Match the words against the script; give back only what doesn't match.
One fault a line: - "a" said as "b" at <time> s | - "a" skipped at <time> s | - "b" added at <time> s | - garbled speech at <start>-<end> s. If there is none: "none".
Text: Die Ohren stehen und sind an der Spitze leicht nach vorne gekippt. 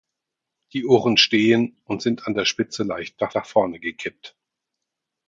- "nach" added at 3.3 s